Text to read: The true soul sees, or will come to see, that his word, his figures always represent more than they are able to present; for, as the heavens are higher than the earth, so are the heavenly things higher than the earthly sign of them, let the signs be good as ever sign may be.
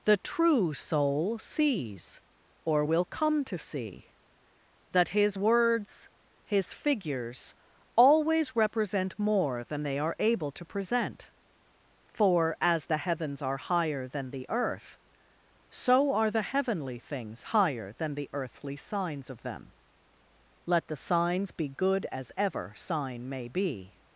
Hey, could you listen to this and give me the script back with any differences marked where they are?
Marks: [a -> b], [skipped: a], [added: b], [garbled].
The true soul sees, or will come to see, that his [word, -> words] his figures always represent more than they are able to present; for, as the heavens are higher than the earth, so are the heavenly things higher than the earthly [sign -> signs] of them, let the signs be good as ever sign may be.